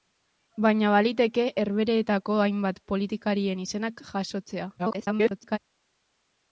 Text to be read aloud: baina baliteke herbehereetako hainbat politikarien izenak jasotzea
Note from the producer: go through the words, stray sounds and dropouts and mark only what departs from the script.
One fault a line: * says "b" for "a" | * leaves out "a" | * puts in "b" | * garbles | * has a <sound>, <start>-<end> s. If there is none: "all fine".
* garbles